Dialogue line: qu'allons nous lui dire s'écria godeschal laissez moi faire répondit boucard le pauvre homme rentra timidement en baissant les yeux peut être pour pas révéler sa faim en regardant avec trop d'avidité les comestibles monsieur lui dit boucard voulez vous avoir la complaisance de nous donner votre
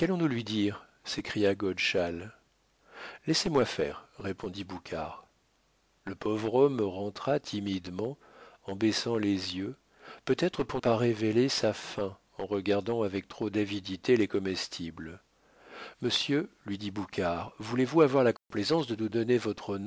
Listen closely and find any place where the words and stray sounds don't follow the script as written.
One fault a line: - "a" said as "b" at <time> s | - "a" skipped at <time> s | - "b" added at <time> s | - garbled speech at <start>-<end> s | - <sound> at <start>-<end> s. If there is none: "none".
- dropout at 18.4-18.5 s